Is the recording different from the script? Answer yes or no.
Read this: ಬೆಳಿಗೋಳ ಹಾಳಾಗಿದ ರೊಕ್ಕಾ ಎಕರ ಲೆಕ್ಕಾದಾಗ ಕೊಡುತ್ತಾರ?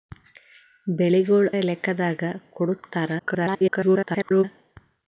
yes